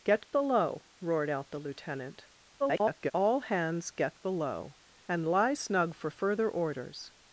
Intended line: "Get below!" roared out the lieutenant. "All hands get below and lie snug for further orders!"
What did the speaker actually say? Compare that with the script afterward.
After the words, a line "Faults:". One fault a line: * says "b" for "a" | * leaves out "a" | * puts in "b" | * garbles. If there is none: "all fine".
"Get below!" roared out the lieutenant. [garbled] "All hands get below and lie snug for further orders!"
Faults:
* garbles